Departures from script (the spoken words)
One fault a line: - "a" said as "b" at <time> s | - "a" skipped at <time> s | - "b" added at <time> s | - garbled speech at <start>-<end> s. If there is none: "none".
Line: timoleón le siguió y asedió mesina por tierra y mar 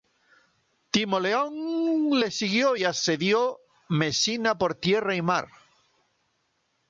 none